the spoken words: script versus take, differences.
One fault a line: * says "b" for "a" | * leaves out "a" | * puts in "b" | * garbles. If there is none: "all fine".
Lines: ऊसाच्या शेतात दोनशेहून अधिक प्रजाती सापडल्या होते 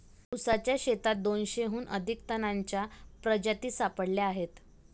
* puts in "तणांच्या"
* says "आहेत" for "होते"